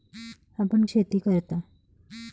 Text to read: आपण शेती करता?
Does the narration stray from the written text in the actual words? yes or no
no